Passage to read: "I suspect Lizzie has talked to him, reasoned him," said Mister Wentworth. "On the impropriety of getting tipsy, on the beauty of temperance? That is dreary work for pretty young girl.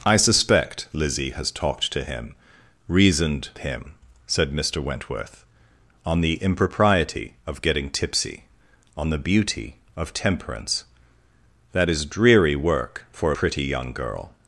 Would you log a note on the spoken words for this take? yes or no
no